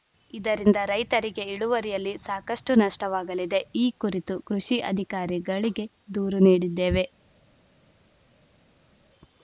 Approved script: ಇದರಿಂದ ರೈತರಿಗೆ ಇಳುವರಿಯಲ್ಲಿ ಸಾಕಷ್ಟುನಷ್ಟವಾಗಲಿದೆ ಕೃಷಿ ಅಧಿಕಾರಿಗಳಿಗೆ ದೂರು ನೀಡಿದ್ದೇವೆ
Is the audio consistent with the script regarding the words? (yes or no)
no